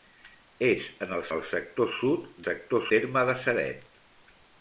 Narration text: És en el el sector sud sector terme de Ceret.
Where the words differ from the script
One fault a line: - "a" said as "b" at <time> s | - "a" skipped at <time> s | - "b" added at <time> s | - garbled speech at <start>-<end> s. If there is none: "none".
none